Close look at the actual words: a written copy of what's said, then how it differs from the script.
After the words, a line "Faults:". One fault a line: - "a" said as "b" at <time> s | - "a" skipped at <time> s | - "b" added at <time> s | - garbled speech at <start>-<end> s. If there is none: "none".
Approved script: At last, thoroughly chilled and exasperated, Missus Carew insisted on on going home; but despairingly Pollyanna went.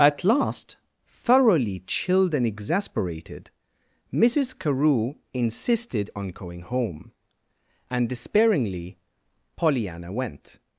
At last, thoroughly chilled and exasperated, Missus Carew insisted on going home; and despairingly Pollyanna went.
Faults:
- "on" skipped at 6.3 s
- "but" said as "and" at 7.9 s